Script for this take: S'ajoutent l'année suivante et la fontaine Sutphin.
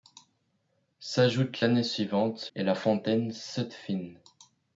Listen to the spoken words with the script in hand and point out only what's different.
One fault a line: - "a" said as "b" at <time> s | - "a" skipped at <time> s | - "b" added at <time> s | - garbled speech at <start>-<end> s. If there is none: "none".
none